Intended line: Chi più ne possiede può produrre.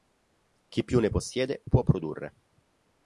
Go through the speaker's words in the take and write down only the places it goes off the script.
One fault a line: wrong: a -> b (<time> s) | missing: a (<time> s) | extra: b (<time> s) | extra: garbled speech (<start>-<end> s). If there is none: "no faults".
no faults